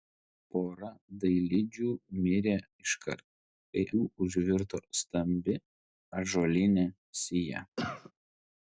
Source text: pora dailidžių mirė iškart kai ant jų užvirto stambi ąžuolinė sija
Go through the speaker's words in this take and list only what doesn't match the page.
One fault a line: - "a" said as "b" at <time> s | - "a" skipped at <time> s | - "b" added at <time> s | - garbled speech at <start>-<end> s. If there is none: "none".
- "ant" skipped at 3.8 s